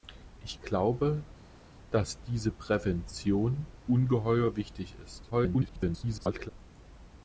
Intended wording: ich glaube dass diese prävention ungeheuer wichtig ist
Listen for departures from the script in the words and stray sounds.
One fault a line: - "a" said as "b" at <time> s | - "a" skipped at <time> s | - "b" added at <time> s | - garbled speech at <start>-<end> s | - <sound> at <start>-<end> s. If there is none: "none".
- garbled speech at 5.3-6.5 s